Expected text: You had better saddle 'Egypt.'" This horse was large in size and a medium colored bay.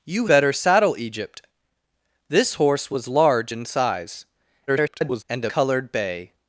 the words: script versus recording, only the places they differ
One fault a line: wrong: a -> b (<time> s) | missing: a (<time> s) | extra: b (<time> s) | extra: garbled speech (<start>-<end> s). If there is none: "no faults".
missing: had (0.3 s)
extra: garbled speech (4.7-5.2 s)
missing: medium (5.5 s)